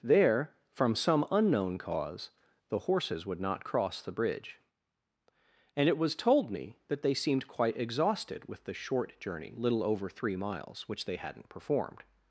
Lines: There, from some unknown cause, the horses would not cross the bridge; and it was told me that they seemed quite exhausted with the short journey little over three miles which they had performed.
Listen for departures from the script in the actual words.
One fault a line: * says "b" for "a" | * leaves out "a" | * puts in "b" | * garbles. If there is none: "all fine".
* says "hadn't" for "had"